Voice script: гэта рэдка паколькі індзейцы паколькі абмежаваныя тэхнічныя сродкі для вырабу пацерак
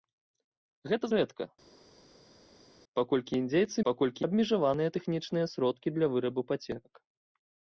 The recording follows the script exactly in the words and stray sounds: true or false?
true